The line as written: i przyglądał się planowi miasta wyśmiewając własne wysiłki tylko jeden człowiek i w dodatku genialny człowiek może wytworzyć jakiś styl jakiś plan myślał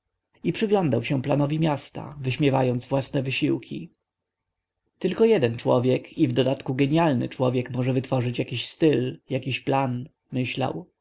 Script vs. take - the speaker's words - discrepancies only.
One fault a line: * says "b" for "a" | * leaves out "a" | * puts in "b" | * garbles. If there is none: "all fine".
all fine